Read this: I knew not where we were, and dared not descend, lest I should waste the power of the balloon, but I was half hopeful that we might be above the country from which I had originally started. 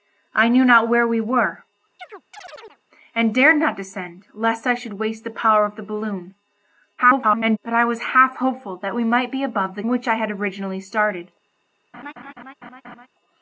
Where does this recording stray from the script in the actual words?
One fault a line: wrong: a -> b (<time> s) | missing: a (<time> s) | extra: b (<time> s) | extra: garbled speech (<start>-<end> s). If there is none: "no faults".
extra: garbled speech (7.0-7.6 s)
missing: country from (9.8 s)